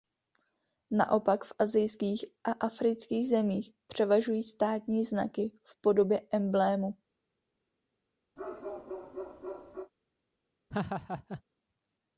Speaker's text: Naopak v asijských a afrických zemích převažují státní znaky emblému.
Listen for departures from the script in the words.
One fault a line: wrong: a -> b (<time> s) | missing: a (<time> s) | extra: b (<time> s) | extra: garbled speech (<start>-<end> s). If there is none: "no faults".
extra: v podobě (5.6 s)